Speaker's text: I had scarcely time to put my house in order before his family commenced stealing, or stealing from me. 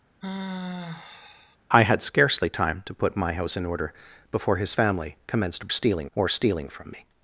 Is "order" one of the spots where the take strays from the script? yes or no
no